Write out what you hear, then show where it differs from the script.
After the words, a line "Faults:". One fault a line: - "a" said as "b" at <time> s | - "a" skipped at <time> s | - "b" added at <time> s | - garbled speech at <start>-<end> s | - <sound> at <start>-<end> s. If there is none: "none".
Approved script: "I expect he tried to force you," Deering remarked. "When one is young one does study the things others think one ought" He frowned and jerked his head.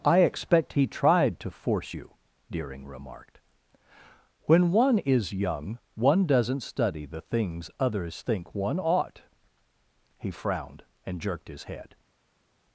"I expect he tried to force you," Deering remarked. "When one is young one doesn't study the things others think one ought" He frowned and jerked his head.
Faults:
- "does" said as "doesn't" at 6.2 s